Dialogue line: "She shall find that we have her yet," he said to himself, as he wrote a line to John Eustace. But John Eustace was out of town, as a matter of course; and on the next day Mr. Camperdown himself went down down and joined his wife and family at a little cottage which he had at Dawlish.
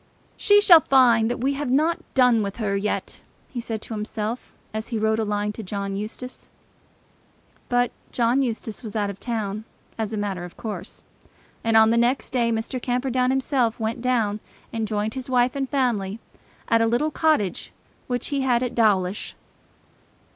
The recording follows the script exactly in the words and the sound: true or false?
false